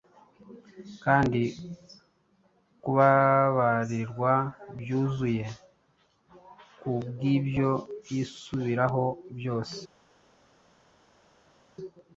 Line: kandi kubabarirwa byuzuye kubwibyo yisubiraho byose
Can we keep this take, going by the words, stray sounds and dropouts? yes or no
yes